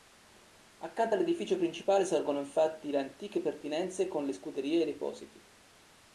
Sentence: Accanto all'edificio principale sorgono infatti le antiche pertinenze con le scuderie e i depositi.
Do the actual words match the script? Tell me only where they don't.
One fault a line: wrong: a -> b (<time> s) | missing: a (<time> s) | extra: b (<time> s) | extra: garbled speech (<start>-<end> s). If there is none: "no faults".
no faults